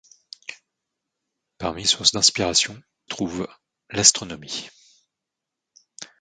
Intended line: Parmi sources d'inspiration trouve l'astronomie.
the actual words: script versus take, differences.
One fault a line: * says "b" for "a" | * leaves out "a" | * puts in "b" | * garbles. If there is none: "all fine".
all fine